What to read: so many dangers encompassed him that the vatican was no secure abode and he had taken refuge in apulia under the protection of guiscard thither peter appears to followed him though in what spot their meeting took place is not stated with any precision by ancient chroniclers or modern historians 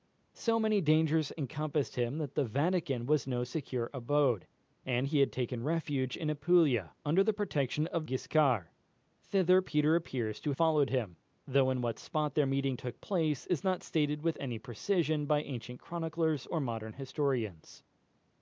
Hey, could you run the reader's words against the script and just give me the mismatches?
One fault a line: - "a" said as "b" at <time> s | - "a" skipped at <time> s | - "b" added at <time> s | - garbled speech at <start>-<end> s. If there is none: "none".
none